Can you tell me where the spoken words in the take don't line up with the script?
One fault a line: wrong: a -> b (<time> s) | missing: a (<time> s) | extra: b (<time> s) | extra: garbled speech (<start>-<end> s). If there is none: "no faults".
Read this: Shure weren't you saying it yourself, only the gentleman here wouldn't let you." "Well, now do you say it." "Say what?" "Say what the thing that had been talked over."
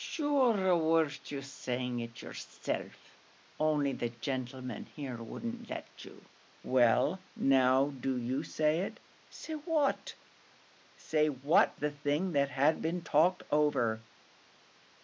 no faults